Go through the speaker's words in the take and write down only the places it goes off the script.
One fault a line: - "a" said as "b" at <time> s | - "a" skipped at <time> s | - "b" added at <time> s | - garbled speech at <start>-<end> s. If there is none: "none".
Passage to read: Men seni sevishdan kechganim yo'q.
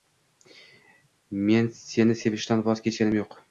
- "voz" added at 2.7 s